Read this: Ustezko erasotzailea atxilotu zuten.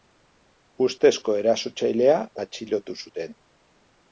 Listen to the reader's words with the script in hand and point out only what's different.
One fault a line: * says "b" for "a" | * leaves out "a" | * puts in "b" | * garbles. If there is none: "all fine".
all fine